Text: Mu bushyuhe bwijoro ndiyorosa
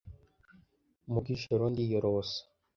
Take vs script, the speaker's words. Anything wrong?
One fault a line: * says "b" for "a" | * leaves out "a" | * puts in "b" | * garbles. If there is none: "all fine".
* leaves out "bushyuhe"